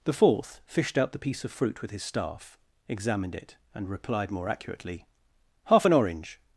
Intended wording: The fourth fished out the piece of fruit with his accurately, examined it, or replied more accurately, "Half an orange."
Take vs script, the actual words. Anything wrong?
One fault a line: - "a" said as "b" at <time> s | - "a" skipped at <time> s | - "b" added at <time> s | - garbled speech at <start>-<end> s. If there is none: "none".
- "accurately" said as "staff" at 2.0 s
- "or" said as "and" at 3.7 s